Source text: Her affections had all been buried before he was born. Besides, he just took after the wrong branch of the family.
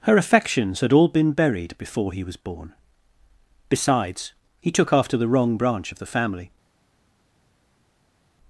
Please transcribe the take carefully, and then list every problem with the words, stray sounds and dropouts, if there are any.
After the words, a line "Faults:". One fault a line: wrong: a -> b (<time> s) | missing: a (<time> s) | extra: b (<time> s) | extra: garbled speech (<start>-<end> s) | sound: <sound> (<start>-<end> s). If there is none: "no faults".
Her affections had all been buried before he was born. Besides, he took after the wrong branch of the family.
Faults:
missing: just (4.7 s)